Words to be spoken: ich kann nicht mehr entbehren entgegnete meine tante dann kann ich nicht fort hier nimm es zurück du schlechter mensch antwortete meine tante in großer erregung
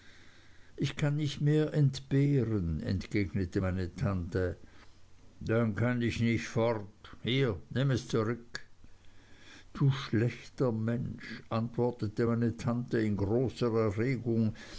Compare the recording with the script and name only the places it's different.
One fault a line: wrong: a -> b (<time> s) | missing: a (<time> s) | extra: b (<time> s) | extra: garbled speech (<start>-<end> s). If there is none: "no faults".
no faults